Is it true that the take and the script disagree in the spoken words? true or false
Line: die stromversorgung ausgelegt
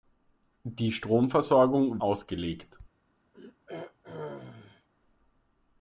false